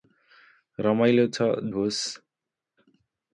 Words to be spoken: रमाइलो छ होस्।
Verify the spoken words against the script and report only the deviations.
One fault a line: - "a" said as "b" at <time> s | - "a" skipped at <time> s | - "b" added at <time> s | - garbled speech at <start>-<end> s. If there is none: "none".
none